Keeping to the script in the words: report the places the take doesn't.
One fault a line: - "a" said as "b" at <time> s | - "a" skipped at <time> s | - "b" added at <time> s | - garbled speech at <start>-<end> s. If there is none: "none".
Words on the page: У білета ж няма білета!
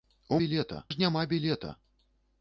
none